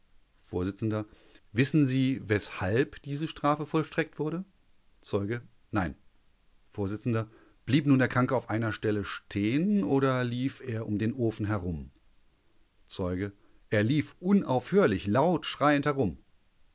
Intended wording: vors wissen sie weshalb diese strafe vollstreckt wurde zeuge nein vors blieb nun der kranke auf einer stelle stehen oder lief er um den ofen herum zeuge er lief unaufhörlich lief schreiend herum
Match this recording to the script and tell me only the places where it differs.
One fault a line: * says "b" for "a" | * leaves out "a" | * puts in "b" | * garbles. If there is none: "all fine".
* says "laut" for "lief"